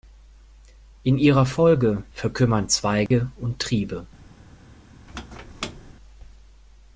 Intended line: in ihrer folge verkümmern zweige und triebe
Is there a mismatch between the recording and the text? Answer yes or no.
no